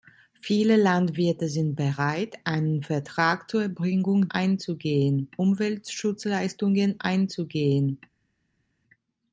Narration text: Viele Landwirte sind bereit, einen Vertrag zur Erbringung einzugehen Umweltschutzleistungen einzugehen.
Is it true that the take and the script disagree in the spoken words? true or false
false